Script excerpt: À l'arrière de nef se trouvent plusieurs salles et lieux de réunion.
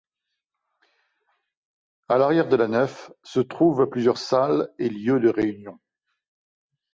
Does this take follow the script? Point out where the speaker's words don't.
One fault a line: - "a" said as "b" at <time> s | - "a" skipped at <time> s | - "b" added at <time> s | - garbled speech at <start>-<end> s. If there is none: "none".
- "la" added at 2.5 s